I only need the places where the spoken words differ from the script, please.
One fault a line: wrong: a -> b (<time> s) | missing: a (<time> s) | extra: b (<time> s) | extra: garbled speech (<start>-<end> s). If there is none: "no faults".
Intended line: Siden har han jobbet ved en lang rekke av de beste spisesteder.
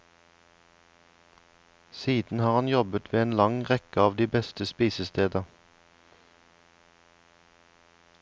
no faults